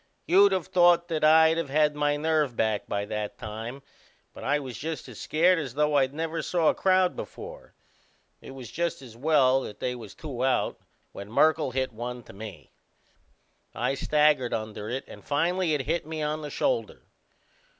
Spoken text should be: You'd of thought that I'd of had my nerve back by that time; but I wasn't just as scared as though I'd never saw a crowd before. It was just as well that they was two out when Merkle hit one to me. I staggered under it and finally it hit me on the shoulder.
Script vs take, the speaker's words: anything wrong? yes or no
yes